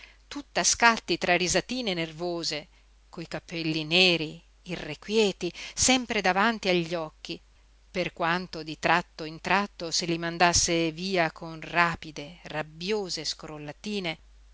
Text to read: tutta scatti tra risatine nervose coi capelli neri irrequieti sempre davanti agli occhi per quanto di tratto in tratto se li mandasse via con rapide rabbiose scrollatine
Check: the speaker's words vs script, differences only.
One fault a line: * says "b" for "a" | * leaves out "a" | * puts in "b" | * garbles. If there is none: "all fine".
all fine